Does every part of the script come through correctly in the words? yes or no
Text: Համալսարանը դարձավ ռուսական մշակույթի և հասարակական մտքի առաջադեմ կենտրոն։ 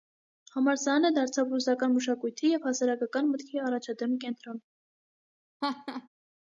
yes